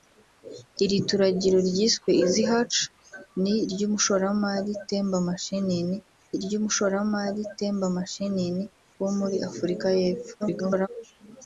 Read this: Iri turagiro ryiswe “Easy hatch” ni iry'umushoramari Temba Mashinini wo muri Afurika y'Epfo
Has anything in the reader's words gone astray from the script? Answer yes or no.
yes